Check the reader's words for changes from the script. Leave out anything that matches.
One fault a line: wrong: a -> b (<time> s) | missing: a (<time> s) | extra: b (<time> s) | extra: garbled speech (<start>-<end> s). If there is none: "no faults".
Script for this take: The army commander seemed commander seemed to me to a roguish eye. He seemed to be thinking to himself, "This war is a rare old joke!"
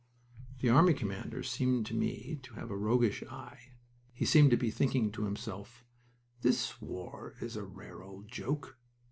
missing: commander seemed (1.9 s)
extra: have (2.5 s)